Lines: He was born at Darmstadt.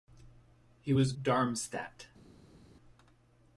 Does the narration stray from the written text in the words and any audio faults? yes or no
yes